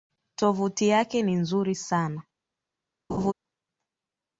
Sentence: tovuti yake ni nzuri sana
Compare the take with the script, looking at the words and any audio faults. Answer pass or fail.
fail